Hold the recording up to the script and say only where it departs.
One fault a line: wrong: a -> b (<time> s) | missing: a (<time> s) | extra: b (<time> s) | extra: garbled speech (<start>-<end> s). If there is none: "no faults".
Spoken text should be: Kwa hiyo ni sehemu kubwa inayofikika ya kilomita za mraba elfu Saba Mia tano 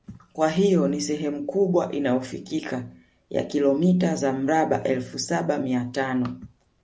no faults